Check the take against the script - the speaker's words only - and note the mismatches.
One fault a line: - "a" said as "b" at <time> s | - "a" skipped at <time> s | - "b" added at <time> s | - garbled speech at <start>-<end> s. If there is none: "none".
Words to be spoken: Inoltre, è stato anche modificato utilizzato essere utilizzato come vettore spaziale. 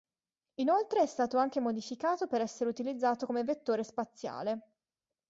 - "utilizzato" said as "per" at 2.2 s